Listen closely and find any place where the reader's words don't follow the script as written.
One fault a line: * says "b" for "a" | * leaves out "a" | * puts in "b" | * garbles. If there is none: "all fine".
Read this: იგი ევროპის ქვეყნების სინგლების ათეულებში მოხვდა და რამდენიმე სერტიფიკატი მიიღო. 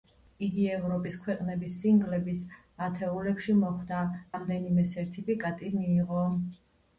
* leaves out "და"